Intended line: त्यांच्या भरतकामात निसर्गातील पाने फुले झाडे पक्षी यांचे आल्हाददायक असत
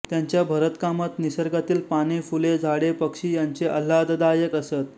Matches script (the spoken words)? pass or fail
pass